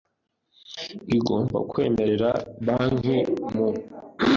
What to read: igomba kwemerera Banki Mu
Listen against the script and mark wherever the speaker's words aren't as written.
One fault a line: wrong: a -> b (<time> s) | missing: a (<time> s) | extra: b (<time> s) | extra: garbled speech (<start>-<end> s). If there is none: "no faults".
no faults